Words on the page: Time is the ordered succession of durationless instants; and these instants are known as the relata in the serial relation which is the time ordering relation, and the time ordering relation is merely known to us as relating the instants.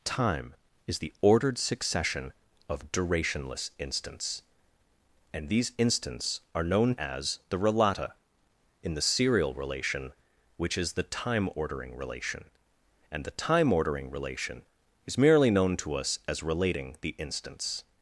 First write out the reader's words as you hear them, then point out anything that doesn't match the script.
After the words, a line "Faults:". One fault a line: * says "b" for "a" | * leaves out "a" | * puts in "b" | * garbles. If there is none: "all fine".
Time is the ordered succession of durationless instants; and these instants are known as the relata in the serial relation which is the time ordering relation, and the time ordering relation is merely known to us as relating the instants.
Faults:
all fine